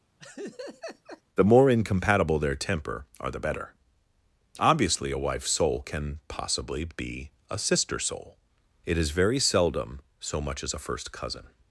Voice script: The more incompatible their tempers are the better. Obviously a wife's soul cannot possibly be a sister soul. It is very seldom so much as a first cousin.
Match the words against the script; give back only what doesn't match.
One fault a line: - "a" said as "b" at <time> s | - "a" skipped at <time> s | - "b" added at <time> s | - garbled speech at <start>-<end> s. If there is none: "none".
- "tempers" said as "temper" at 2.5 s
- "cannot" said as "can" at 5.8 s